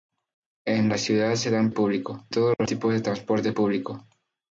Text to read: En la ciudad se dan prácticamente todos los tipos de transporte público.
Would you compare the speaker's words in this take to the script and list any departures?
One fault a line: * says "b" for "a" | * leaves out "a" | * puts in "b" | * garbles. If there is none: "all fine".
* says "público" for "prácticamente"